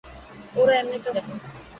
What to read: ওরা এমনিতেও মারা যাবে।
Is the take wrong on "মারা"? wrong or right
wrong